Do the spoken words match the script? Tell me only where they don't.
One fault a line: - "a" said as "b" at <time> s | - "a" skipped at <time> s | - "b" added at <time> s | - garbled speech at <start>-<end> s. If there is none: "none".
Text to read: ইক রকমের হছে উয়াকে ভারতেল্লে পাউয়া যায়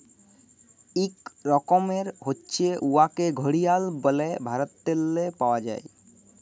- "ঘড়িয়াল ব্যলে" added at 3.3 s